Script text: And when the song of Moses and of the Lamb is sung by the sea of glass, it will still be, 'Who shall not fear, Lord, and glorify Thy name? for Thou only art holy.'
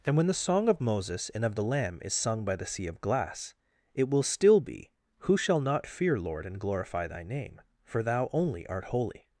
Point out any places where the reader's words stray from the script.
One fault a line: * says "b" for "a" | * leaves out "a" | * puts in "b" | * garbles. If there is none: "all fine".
all fine